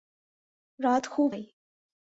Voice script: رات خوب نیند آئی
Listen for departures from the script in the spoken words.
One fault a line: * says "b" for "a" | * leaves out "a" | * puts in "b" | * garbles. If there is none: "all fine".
* leaves out "نیند"